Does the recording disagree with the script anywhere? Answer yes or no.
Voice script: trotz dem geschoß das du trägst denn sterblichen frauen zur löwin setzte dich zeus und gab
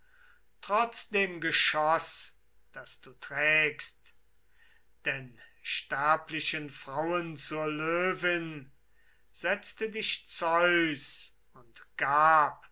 no